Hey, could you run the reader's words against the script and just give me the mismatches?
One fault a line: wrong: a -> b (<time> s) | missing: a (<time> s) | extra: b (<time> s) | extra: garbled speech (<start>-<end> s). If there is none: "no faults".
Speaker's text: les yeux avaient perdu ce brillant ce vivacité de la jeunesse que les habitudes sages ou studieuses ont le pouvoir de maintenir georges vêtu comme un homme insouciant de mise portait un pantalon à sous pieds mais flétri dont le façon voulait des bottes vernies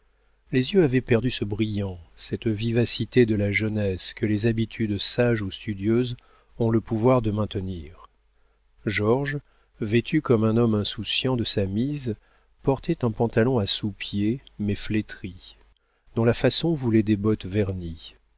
wrong: ce -> cette (2.1 s)
extra: sa (11.4 s)
wrong: le -> la (16.2 s)